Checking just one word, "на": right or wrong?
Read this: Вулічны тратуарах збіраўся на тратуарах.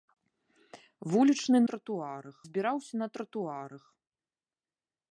right